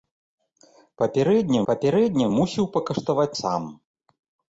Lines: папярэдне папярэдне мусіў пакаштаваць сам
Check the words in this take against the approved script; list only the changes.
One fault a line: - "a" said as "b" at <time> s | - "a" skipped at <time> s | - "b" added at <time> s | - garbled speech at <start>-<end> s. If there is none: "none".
none